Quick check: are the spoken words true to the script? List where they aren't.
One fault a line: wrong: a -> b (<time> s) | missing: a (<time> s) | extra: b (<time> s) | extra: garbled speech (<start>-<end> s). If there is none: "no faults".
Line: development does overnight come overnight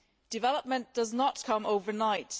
wrong: overnight -> not (1.1 s)